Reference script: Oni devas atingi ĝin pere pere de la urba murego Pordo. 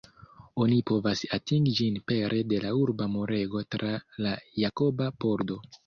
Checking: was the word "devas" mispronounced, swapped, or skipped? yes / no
yes